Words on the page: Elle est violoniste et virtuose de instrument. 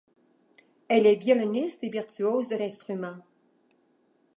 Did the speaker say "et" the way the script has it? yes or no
yes